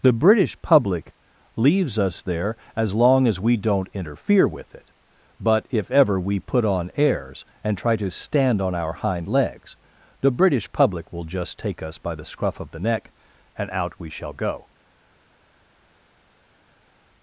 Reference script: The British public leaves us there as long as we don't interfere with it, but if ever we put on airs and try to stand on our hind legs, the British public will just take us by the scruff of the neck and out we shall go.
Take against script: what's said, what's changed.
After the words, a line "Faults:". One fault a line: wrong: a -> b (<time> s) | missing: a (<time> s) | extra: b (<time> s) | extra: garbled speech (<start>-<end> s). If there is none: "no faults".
The British public leaves us there as long as we don't interfere with it, but if ever we put on airs and try to stand on our hind legs, the British public will just take us by the scruff of the neck and out we shall go.
Faults:
no faults